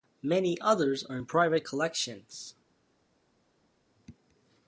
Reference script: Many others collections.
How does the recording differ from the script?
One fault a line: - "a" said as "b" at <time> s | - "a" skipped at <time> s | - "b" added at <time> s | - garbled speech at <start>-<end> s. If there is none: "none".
- "are in private" added at 1.0 s